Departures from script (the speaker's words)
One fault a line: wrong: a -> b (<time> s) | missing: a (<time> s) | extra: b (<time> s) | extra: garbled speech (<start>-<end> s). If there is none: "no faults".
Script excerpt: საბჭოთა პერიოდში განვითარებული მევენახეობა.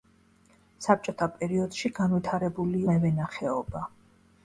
no faults